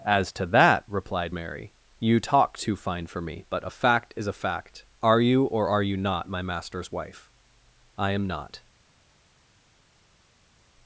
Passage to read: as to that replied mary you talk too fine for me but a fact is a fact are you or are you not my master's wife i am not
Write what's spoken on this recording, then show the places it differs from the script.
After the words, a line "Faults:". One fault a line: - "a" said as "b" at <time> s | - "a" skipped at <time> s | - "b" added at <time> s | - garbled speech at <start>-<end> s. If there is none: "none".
as to that replied mary you talk too fine for me but a fact is a fact are you or are you not my master's wife i am not
Faults:
none